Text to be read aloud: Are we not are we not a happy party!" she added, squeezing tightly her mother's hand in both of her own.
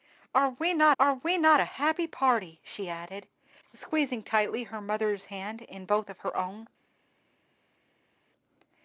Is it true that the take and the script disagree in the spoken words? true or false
false